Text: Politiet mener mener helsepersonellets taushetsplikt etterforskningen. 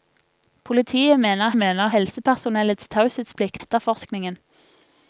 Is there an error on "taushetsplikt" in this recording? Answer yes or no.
no